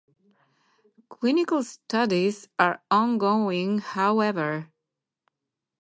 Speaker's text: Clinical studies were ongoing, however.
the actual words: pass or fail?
fail